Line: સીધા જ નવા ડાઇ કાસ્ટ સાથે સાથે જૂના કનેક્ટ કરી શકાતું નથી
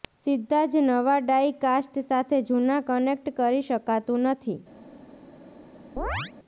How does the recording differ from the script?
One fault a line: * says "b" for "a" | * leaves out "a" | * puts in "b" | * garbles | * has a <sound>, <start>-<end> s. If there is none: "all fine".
* leaves out "સાથે"
* has a chirp, 6.0-6.3 s